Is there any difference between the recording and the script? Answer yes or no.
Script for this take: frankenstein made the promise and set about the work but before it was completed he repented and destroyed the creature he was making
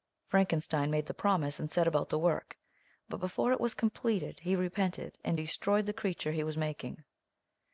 no